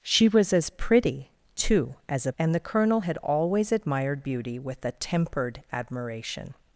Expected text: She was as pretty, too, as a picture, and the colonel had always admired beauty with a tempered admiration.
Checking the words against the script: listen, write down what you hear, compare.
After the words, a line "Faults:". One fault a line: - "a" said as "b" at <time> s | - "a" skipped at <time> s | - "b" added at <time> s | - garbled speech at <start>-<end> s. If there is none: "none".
She was as pretty, too, as a and the colonel had always admired beauty with a tempered admiration.
Faults:
- "picture" skipped at 2.3 s